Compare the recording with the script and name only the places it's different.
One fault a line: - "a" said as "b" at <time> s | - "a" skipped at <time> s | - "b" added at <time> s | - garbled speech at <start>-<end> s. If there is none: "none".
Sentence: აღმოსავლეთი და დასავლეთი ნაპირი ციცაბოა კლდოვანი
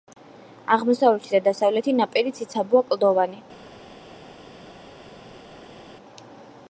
none